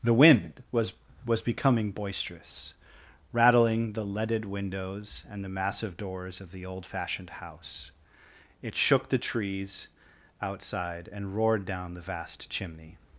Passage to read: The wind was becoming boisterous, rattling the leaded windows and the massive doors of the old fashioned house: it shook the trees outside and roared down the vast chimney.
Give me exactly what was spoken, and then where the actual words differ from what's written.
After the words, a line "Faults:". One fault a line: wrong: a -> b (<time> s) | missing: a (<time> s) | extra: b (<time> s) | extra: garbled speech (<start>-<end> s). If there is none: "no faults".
The wind was was becoming boisterous, rattling the leaded windows and the massive doors of the old fashioned house: it shook the trees outside and roared down the vast chimney.
Faults:
extra: was (1.3 s)